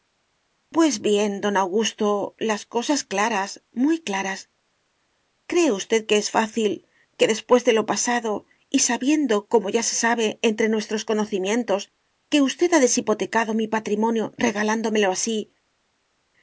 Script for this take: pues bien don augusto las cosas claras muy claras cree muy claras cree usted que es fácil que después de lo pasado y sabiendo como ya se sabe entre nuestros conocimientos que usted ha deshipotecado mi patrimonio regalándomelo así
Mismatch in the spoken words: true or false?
true